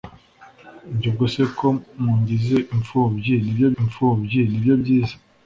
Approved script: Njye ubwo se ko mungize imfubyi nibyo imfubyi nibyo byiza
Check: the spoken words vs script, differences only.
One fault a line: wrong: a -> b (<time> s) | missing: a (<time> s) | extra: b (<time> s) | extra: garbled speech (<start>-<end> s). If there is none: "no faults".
no faults